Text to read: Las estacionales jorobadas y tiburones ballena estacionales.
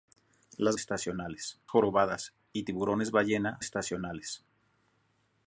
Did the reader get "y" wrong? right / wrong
right